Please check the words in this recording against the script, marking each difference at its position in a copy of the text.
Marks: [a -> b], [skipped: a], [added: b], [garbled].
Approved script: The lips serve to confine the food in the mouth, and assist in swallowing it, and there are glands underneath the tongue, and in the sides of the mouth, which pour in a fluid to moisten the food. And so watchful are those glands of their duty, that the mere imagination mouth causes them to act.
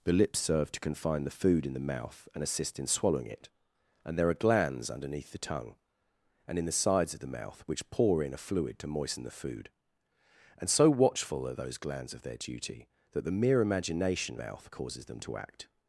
The lips serve to confine the food in the mouth, and assist in swallowing it, and there are glands underneath the tongue, and in the sides of the mouth, which pour in a fluid to moisten the food. And so watchful are those glands of their duty, that the mere imagination mouth causes them to act.